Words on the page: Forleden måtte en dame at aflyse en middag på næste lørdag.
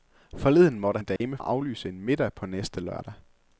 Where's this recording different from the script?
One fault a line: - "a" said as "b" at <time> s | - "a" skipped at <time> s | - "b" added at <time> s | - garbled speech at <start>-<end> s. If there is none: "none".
none